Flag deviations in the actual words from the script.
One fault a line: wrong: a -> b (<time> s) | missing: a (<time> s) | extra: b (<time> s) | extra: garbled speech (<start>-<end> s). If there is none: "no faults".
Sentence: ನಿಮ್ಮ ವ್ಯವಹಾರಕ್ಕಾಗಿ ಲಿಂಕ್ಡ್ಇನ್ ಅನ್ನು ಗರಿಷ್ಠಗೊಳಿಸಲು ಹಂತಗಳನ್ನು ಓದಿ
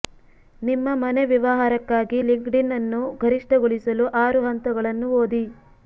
extra: ಮನೆ (1.0 s)
extra: ಆರು (4.2 s)